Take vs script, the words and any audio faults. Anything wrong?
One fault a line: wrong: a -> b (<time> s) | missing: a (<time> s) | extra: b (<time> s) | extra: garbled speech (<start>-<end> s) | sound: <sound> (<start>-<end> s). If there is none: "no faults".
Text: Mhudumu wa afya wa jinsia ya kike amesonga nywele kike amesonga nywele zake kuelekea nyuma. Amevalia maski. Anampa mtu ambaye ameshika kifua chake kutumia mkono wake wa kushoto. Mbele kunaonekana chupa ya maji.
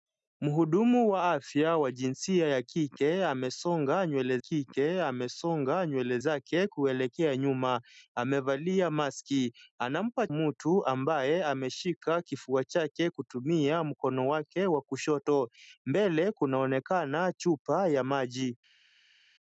no faults